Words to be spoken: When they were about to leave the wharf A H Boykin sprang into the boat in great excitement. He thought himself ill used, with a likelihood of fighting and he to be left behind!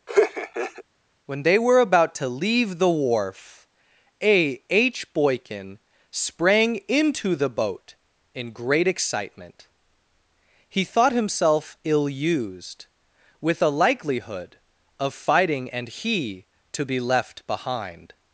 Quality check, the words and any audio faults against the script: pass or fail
fail